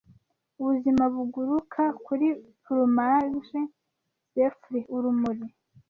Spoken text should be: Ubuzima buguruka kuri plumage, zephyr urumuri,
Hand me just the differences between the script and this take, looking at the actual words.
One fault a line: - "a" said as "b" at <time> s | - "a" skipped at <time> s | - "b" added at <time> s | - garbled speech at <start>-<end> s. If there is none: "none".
none